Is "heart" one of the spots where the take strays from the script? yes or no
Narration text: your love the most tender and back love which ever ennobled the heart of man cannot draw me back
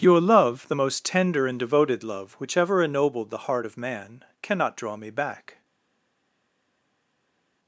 no